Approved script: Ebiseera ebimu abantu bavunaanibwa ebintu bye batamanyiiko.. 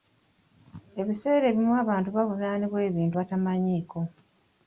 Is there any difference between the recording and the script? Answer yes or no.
yes